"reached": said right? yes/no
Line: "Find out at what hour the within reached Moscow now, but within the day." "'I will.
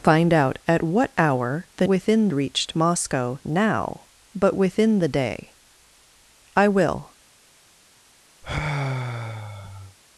yes